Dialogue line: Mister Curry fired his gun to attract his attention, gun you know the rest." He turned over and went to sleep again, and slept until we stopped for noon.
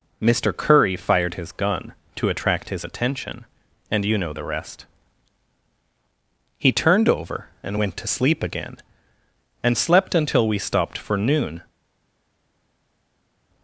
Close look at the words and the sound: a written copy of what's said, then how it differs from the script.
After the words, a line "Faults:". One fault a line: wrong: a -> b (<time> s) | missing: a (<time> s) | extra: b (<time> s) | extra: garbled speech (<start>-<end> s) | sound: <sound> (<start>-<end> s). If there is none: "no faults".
Mister Curry fired his gun to attract his attention, and you know the rest." He turned over and went to sleep again, and slept until we stopped for noon.
Faults:
wrong: gun -> and (3.9 s)